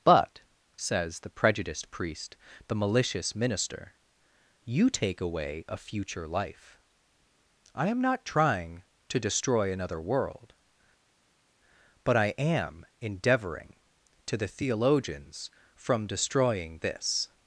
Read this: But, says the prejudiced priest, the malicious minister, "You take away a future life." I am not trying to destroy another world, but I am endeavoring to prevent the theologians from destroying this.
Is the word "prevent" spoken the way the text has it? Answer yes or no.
no